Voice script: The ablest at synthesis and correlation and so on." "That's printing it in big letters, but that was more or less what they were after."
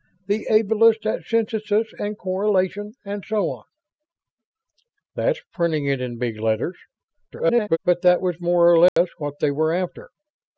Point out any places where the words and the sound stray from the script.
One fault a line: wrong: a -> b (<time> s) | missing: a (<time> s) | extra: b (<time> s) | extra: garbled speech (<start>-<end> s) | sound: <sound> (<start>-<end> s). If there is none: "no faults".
extra: garbled speech (7.3-7.8 s)
sound: dropout (8.9-9.0 s)